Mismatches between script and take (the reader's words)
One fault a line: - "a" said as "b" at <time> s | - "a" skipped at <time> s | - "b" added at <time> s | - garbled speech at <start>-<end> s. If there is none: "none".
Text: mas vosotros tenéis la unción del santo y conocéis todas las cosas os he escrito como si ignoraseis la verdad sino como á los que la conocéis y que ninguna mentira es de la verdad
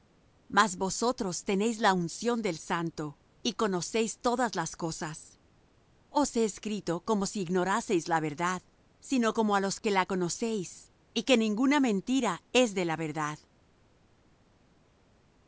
none